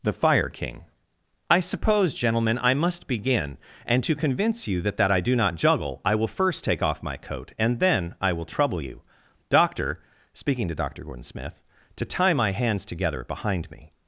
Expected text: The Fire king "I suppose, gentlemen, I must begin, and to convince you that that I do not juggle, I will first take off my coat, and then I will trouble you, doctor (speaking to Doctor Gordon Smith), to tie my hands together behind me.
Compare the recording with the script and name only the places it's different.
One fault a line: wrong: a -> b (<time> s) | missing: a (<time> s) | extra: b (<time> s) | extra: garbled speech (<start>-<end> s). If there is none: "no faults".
no faults